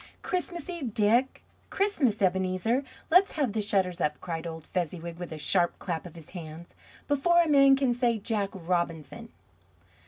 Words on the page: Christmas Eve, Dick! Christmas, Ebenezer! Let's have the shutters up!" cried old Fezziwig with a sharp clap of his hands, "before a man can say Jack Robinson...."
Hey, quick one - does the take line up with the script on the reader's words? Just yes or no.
yes